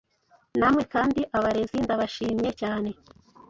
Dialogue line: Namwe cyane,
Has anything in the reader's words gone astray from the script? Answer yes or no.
yes